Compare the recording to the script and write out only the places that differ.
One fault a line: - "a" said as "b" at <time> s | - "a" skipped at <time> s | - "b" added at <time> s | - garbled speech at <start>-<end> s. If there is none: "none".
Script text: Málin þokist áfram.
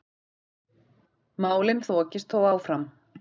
- "þó" added at 2.3 s